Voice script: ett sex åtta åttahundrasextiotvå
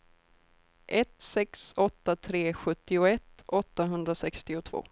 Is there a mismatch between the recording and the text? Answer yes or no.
yes